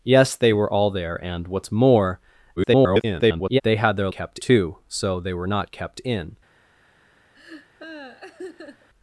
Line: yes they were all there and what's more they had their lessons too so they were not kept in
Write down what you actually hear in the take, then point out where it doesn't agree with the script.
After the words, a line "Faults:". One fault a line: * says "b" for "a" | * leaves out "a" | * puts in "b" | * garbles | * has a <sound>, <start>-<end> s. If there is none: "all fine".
yes they were all there and what's more [garbled] they had their kept too so they were not kept in
Faults:
* garbles
* says "kept" for "lessons"
* has a laugh, 7.3-8.9 s